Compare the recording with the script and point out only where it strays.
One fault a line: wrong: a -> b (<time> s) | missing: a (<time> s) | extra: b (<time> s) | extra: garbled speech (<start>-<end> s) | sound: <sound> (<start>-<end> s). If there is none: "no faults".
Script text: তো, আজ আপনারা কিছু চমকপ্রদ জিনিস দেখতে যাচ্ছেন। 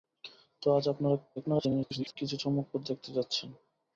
extra: garbled speech (1.4-2.2 s)
missing: জিনিস (2.8 s)